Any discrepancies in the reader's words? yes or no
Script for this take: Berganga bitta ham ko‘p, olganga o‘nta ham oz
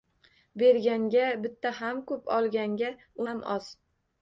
yes